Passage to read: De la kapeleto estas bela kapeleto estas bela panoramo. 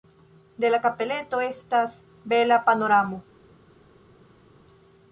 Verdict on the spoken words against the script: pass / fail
fail